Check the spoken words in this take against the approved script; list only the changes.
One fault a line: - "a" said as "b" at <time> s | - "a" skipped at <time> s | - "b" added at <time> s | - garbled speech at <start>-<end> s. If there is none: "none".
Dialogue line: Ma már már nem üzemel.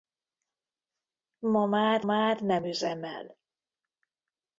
none